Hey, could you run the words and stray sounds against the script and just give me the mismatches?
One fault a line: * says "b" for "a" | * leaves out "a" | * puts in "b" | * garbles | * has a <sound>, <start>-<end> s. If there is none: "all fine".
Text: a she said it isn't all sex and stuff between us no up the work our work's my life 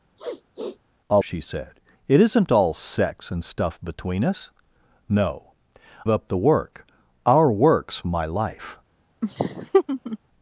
* has a sniff, 0.2-0.8 s
* has a laugh, 9.2-10.2 s